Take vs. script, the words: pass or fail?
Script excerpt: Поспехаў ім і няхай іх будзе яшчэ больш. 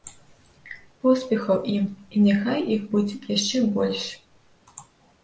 pass